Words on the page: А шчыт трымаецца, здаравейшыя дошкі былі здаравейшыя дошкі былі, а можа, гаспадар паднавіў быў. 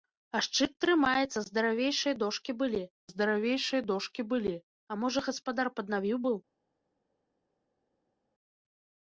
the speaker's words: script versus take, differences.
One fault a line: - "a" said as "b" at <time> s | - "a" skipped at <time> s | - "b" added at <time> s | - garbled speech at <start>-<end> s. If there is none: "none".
none